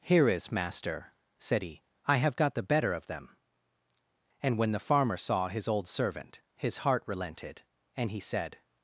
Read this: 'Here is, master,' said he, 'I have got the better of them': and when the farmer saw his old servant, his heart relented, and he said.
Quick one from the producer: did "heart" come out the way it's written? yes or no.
yes